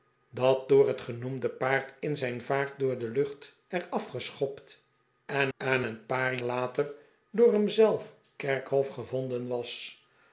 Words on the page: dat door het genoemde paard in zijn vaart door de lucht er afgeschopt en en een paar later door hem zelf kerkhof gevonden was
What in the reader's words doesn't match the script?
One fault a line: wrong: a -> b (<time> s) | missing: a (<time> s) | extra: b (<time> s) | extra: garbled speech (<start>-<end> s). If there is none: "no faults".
no faults